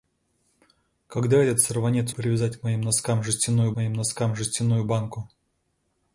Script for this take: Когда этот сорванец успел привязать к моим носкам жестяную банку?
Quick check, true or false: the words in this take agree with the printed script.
false